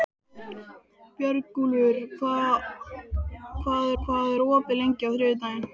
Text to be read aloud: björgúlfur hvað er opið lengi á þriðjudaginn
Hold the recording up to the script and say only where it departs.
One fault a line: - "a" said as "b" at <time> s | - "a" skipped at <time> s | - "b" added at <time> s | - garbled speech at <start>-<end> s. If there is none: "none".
- "hvað" added at 4.0 s